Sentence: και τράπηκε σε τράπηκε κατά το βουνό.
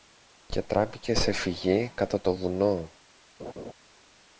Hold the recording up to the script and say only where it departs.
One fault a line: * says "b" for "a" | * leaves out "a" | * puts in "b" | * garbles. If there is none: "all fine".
* says "φυγή" for "τράπηκε"